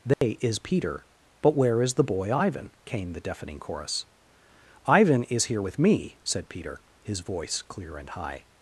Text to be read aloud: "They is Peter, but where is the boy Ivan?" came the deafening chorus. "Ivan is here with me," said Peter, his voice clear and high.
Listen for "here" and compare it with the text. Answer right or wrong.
right